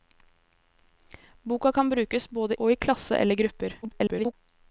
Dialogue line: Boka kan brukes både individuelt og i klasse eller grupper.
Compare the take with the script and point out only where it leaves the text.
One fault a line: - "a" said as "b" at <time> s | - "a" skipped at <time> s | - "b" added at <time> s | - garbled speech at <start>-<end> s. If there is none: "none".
- "individuelt" skipped at 2.5 s
- garbled speech at 3.8-4.3 s